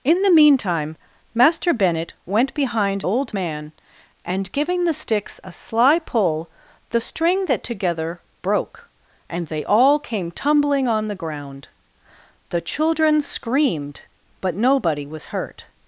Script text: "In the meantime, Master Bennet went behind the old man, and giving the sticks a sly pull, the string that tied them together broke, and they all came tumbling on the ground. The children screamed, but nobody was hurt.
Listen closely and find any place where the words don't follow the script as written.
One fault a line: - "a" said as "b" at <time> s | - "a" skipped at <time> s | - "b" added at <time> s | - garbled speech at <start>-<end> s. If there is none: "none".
- "the" skipped at 3.0 s
- "tied them" skipped at 7.6 s